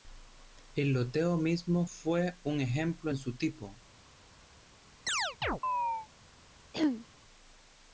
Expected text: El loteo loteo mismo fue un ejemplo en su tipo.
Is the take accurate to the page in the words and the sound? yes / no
no